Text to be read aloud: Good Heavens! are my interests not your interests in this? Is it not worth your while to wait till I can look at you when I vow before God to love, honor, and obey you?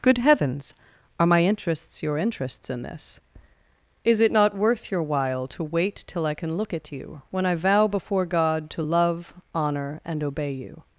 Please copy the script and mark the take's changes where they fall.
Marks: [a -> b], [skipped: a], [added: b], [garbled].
Good Heavens! are my interests [skipped: not] your interests in this? Is it not worth your while to wait till I can look at you when I vow before God to love, honor, and obey you?